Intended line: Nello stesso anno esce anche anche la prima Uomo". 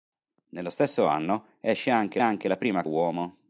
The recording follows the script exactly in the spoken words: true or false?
true